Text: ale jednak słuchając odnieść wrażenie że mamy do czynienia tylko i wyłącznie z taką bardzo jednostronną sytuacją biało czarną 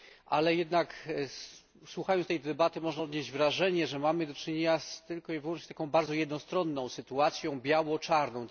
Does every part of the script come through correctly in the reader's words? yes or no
no